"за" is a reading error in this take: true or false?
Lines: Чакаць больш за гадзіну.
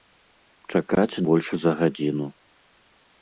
false